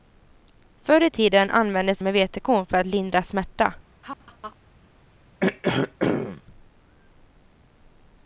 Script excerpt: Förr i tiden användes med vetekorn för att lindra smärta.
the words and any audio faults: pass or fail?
fail